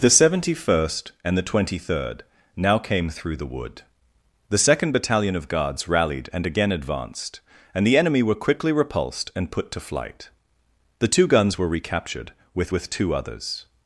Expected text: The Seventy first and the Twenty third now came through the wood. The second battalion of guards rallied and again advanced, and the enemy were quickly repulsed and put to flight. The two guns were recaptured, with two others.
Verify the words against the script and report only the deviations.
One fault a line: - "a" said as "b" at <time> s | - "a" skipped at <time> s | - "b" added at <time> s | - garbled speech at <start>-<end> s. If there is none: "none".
- "with" added at 12.7 s